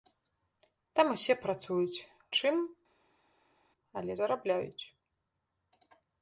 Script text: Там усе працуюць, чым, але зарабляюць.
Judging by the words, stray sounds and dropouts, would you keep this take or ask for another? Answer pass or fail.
pass